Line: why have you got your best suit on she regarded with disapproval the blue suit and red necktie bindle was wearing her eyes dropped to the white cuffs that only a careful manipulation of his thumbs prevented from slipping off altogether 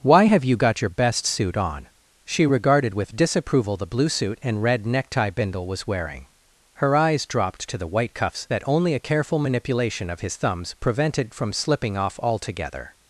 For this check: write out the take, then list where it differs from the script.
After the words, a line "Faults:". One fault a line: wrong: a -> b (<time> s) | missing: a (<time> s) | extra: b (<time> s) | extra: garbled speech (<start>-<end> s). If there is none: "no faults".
why have you got your best suit on she regarded with disapproval the blue suit and red necktie bindle was wearing her eyes dropped to the white cuffs that only a careful manipulation of his thumbs prevented from slipping off altogether
Faults:
no faults